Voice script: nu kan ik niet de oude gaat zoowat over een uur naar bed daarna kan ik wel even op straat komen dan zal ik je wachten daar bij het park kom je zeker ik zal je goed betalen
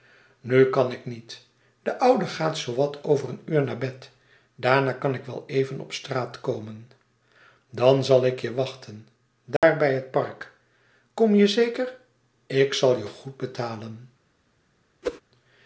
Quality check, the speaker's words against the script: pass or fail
pass